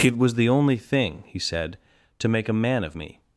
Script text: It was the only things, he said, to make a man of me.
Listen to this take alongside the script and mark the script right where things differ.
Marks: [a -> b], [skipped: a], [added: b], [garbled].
It was the only [things, -> thing] he said, to make a man of me.